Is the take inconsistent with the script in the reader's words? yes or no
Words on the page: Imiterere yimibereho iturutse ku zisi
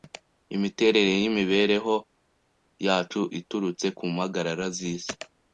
yes